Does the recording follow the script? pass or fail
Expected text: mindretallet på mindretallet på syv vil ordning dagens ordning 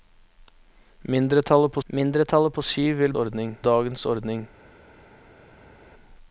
pass